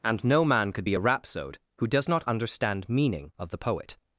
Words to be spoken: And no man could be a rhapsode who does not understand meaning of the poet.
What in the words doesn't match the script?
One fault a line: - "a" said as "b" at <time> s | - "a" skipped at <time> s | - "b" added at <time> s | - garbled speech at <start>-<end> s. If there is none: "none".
none